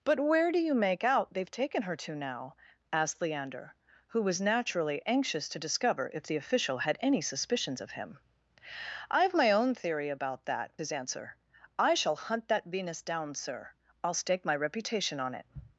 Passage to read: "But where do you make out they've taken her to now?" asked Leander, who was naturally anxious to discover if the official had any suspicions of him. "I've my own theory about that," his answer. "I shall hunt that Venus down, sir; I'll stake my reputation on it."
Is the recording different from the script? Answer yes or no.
no